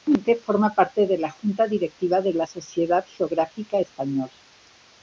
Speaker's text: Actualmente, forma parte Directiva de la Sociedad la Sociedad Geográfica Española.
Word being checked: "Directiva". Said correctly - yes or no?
no